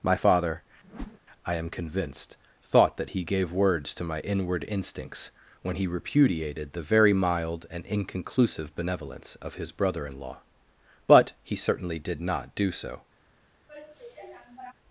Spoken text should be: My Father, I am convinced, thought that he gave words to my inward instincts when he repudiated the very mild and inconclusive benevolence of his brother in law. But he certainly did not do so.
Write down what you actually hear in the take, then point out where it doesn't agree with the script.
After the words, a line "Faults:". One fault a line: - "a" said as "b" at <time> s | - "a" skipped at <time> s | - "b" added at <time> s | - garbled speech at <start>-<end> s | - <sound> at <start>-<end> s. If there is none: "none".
My Father, I am convinced, thought that he gave words to my inward instincts when he repudiated the very mild and inconclusive benevolence of his brother in law. But he certainly did not do so.
Faults:
- whoosh at 0.8-1.2 s
- sigh at 13.7-14.7 s